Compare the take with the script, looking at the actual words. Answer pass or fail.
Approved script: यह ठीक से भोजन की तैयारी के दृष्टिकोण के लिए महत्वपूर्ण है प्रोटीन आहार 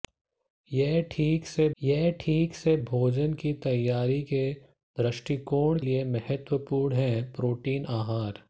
fail